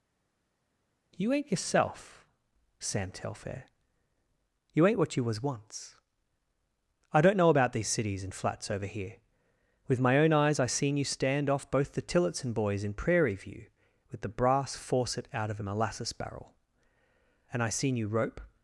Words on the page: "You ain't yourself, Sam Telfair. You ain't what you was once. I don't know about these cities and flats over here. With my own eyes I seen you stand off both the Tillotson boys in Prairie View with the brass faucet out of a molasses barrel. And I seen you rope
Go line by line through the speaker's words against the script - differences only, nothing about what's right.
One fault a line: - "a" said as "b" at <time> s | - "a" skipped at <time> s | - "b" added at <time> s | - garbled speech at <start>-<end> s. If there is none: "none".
none